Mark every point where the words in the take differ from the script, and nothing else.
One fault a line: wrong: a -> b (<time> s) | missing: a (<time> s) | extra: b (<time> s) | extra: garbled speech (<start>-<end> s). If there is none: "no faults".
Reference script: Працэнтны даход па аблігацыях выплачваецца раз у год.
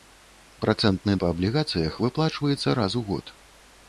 missing: даход (1.1 s)